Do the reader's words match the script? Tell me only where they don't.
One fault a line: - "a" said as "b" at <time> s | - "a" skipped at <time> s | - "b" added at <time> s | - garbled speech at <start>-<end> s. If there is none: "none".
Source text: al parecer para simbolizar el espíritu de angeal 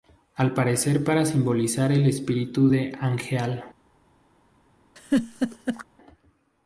none